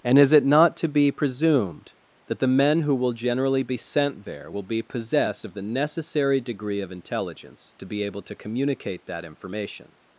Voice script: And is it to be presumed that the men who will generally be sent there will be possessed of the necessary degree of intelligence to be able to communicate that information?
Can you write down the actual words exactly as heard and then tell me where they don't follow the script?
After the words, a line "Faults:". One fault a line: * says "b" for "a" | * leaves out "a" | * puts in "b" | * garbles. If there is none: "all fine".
And is it not to be presumed that the men who will generally be sent there will be possessed of the necessary degree of intelligence to be able to communicate that information?
Faults:
* puts in "not"